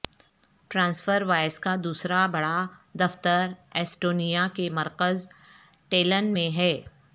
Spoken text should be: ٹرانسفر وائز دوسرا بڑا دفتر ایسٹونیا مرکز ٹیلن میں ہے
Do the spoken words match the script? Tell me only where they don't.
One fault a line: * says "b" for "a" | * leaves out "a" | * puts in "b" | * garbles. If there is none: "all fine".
* puts in "کا"
* puts in "کے"